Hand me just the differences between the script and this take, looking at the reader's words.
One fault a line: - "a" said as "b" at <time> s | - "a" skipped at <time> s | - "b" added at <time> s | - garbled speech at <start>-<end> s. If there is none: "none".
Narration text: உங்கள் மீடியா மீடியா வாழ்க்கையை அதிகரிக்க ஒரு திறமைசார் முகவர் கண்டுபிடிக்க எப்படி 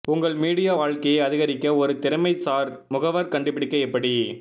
- "மீடியா" skipped at 0.7 s